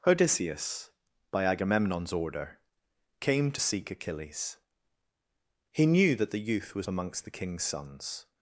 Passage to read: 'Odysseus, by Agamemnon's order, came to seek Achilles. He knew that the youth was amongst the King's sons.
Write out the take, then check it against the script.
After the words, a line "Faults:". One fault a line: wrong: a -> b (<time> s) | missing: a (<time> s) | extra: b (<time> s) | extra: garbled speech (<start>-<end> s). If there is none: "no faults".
'Odysseus, by Agamemnon's order, came to seek Achilles. He knew that the youth was amongst the King's sons.
Faults:
no faults